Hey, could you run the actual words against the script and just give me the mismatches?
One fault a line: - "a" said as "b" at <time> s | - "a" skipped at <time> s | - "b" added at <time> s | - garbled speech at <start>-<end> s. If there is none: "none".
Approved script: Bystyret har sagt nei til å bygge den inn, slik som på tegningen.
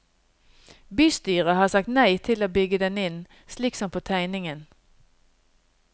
none